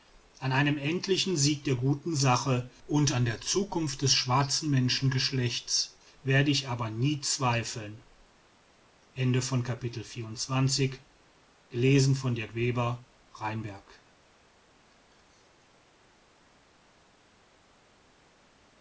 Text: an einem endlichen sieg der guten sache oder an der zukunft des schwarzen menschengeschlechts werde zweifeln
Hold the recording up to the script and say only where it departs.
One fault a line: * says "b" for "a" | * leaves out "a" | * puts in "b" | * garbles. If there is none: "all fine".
* says "und" for "oder"
* puts in "ich aber nie"